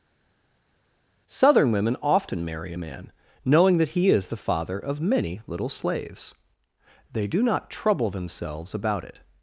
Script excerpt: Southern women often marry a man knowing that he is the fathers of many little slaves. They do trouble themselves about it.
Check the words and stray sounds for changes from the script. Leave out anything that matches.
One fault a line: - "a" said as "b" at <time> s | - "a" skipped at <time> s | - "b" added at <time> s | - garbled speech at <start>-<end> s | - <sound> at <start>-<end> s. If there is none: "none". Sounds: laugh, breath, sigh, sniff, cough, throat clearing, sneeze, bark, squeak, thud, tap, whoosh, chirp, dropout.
- "fathers" said as "father" at 4.4 s
- "not" added at 7.4 s